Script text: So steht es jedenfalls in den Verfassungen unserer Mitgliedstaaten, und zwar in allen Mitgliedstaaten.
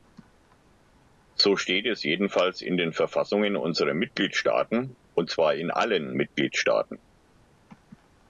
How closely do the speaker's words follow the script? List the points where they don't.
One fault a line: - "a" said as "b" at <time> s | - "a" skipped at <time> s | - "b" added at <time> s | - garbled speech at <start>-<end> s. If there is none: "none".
none